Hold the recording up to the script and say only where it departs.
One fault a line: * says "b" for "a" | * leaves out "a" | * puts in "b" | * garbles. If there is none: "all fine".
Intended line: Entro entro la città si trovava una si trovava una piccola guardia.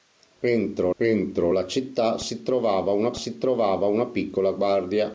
all fine